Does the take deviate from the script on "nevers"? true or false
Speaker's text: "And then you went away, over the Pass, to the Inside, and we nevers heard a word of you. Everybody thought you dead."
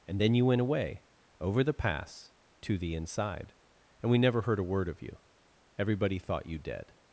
true